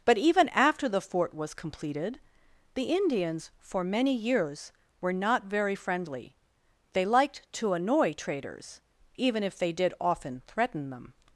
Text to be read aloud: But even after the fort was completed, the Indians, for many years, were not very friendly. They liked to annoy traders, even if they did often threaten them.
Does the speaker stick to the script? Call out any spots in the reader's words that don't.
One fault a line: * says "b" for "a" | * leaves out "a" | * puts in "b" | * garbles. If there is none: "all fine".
all fine